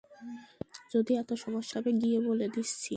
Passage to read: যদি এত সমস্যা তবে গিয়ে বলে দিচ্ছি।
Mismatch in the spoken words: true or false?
false